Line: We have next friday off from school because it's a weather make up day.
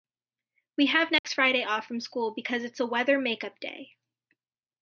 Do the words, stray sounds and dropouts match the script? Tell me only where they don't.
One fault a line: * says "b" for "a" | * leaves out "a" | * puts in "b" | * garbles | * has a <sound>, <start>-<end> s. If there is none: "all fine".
* has a dropout, 1.2-1.2 s